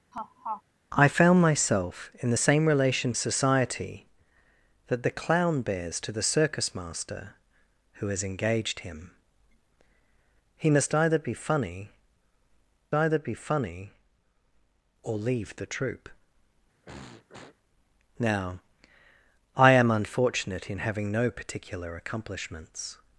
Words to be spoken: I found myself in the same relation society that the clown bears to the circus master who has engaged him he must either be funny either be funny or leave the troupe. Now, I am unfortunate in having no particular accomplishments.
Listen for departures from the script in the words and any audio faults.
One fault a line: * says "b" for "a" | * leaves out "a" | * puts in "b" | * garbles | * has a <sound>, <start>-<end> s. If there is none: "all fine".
* has a laugh, 0.1-0.6 s
* has a throat clearing, 16.8-17.6 s